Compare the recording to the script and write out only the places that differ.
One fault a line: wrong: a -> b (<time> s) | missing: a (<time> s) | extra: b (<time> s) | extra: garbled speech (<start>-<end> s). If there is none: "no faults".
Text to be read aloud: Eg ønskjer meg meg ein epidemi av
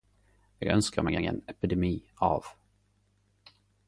no faults